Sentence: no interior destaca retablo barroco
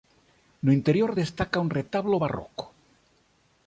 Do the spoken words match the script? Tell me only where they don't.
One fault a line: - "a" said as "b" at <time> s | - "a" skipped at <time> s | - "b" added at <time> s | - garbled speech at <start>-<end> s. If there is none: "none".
- "un" added at 1.6 s